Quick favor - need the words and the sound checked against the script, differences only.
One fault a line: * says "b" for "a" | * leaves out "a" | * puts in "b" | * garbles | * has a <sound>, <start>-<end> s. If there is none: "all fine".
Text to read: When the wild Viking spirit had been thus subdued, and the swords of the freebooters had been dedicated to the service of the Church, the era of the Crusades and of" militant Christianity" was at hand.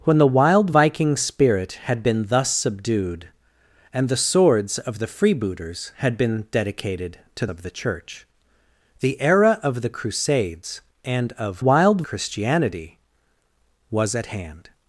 * leaves out "the service"
* says "wild" for "militant"